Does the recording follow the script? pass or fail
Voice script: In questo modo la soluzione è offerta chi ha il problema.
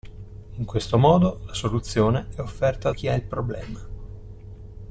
pass